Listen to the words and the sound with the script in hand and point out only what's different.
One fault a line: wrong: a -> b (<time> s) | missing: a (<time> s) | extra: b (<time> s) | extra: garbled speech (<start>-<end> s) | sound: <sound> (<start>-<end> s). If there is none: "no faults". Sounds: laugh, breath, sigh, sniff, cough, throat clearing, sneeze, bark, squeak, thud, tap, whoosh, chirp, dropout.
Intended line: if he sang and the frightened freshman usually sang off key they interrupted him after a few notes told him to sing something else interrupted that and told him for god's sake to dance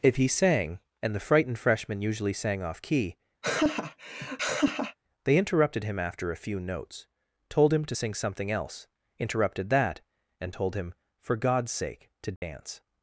sound: laugh (3.4-5.0 s)
sound: dropout (12.4-12.4 s)